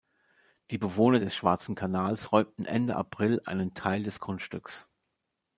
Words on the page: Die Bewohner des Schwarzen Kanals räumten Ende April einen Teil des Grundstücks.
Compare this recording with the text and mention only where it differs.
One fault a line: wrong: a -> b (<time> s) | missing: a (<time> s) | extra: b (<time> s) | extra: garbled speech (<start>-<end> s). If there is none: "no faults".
no faults